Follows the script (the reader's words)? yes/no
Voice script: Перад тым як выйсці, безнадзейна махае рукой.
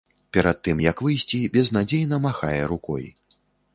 yes